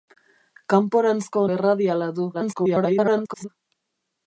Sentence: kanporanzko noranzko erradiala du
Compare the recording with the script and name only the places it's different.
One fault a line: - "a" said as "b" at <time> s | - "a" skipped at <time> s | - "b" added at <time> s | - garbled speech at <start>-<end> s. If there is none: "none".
- "noranzko" skipped at 1.4 s
- garbled speech at 2.3-3.5 s